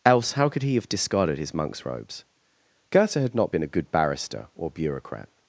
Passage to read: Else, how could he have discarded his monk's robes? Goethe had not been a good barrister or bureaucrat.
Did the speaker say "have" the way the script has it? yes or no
yes